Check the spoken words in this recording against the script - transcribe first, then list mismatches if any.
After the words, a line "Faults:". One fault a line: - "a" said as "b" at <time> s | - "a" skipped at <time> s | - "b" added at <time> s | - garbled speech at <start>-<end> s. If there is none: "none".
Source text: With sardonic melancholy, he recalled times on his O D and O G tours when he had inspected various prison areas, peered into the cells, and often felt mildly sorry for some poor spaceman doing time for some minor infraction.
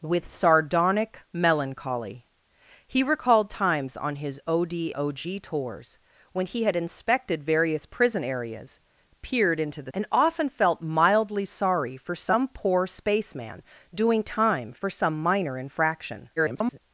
With sardonic melancholy, he recalled times on his O D O G tours when he had inspected various prison areas, peered into the and often felt mildly sorry for some poor spaceman doing time for some minor infraction. [garbled]
Faults:
- "and" skipped at 4.9 s
- "cells" skipped at 9.9 s
- garbled speech at 16.4-16.8 s